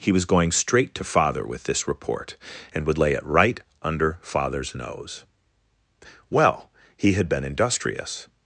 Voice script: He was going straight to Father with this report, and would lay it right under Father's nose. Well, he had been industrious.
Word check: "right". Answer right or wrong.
right